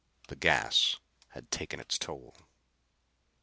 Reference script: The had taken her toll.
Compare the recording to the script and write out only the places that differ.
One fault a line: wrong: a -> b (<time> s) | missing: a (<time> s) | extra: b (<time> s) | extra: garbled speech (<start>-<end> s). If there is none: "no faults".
extra: gas (0.3 s)
wrong: her -> its (1.8 s)